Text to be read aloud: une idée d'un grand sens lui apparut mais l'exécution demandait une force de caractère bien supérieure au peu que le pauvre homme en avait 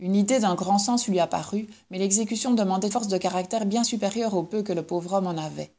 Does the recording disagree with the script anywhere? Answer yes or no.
yes